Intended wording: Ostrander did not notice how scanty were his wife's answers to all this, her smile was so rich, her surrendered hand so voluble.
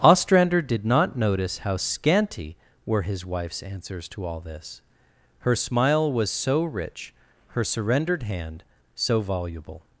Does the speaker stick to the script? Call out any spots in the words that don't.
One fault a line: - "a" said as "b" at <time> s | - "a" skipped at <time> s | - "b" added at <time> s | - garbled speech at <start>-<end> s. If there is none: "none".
none